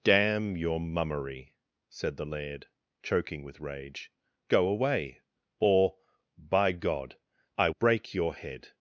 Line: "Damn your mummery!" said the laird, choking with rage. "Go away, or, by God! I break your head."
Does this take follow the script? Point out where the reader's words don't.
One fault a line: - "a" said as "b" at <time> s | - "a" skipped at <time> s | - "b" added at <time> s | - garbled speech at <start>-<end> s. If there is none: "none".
none